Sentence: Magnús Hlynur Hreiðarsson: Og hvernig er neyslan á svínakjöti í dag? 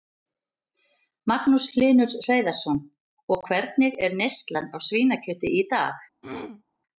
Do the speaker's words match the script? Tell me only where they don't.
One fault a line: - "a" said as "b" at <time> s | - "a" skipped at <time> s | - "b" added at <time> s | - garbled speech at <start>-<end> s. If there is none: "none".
none